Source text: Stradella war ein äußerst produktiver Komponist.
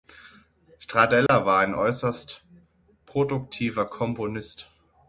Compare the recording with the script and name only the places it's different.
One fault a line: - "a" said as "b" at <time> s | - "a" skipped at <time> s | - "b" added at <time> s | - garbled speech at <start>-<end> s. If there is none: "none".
none